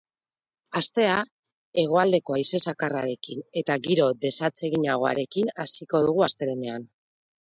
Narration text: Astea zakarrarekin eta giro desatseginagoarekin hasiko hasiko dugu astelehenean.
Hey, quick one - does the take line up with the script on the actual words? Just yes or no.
no